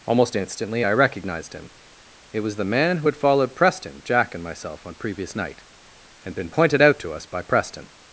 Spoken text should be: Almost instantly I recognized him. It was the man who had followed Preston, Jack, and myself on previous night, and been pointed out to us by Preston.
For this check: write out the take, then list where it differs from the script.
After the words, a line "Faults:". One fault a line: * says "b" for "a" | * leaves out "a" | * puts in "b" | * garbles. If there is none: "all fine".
Almost instantly I recognized him. It was the man who had followed Preston, Jack, and myself on previous night, and been pointed out to us by Preston.
Faults:
all fine